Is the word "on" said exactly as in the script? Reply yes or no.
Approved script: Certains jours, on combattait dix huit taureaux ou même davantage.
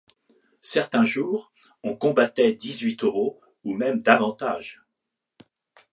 yes